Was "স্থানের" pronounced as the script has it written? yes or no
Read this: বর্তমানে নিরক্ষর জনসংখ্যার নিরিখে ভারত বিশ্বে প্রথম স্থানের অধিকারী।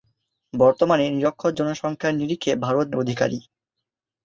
no